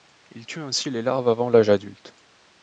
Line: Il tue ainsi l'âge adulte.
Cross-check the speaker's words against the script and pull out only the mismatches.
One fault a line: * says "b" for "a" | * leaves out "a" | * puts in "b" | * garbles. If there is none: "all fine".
* puts in "les larves avant"